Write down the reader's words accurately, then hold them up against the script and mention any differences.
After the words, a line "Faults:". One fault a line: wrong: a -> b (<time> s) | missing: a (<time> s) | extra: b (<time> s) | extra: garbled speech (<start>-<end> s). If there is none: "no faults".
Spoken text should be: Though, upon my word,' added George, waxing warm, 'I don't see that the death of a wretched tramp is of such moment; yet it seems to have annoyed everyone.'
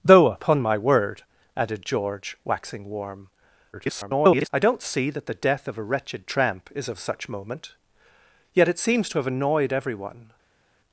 Though, upon my word,' added George, waxing warm, [garbled] 'I don't see that the death of a wretched tramp is of such moment; yet it seems to have annoyed everyone.'
Faults:
extra: garbled speech (3.7-4.5 s)